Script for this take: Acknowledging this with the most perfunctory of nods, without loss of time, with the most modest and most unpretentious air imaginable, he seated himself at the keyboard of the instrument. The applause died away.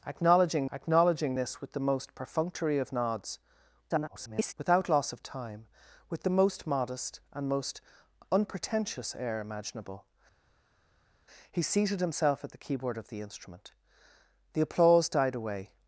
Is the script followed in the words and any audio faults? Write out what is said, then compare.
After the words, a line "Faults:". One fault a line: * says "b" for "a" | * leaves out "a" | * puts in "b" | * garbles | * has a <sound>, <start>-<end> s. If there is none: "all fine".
Acknowledging acknowledging this with the most perfunctory of nods, [garbled] without loss of time, with the most modest and most unpretentious air imaginable, he seated himself at the keyboard of the instrument. The applause died away.
Faults:
* puts in "acknowledging"
* garbles